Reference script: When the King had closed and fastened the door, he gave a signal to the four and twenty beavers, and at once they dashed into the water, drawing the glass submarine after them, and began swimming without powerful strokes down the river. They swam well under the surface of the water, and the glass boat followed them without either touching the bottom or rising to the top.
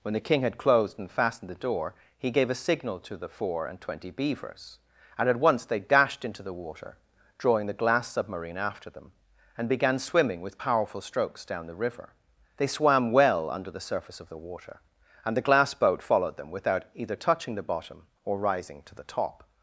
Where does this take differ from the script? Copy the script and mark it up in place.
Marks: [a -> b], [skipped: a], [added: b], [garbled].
When the King had closed and fastened the door, he gave a signal to the four and twenty beavers, and at once they dashed into the water, drawing the glass submarine after them, and began swimming [without -> with] powerful strokes down the river. They swam well under the surface of the water, and the glass boat followed them without either touching the bottom or rising to the top.